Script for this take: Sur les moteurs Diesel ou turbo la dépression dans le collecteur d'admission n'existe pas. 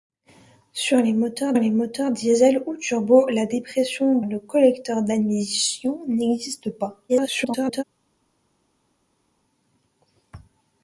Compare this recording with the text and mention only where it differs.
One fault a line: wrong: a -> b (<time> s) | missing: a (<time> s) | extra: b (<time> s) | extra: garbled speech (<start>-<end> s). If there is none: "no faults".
extra: les moteurs (1.5 s)
missing: dans (4.2 s)
extra: garbled speech (7.1-7.8 s)